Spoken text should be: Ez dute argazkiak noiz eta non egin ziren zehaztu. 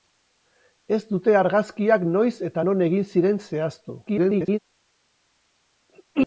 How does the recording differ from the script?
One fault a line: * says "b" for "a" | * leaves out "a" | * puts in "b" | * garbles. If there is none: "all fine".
* garbles